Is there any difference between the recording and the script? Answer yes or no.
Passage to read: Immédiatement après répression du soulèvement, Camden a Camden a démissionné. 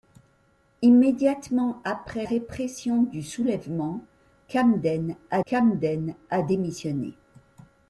no